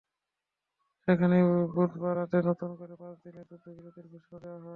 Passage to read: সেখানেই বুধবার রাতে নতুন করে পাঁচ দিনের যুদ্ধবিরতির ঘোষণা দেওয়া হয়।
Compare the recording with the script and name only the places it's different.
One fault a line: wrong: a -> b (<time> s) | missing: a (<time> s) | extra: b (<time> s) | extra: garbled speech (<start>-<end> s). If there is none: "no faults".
no faults